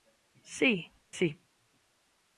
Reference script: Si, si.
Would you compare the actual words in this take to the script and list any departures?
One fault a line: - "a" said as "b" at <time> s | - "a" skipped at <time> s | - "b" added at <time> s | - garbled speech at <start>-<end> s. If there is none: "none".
none